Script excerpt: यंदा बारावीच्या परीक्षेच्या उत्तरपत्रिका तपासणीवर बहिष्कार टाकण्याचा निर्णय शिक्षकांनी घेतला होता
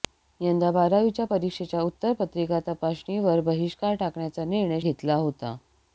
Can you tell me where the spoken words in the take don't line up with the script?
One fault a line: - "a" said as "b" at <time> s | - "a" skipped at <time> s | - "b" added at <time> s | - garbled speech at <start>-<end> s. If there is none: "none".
- "शिक्षकांनी" skipped at 4.8 s